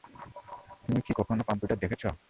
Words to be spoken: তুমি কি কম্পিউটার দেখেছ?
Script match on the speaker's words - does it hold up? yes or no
no